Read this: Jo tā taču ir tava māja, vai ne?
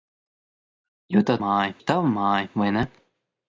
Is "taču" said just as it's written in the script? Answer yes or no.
no